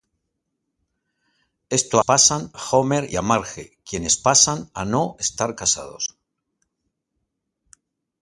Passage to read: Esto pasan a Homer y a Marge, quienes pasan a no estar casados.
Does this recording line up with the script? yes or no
yes